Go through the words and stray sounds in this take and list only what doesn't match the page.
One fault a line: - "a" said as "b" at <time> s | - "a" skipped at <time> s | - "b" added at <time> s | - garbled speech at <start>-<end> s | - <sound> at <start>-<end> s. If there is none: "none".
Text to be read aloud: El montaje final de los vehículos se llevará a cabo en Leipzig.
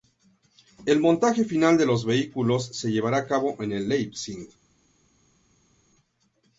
none